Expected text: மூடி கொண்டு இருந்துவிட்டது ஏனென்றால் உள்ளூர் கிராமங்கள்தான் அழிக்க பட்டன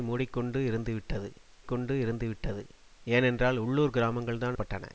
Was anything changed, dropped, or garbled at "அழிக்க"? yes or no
yes